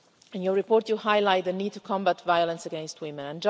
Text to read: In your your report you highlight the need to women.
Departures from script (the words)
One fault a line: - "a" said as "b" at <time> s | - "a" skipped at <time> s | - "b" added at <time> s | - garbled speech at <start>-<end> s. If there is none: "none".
- "your" skipped at 0.5 s
- "combat violence against" added at 1.8 s